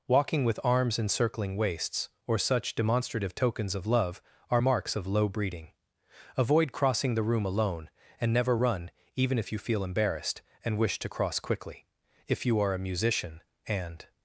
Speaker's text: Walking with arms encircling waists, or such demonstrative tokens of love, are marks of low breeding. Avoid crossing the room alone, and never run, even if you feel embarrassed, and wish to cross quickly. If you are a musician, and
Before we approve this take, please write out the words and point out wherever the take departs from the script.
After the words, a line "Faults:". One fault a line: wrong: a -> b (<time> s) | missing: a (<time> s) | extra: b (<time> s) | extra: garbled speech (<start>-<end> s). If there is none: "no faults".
Walking with arms encircling waists, or such demonstrative tokens of love, are marks of low breeding. Avoid crossing the room alone, and never run, even if you feel embarrassed, and wish to cross quickly. If you are a musician, and
Faults:
no faults